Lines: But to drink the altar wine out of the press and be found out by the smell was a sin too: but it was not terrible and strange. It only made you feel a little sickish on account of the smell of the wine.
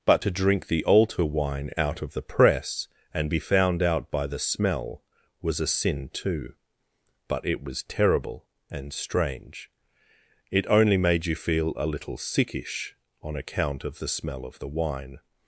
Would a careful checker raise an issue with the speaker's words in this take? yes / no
yes